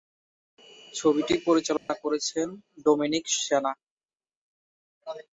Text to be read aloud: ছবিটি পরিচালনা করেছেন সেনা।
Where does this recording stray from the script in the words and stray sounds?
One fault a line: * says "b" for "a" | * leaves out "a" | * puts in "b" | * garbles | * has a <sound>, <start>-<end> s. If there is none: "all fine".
* has a dropout, 1.8-1.9 s
* puts in "ডোমিনিক"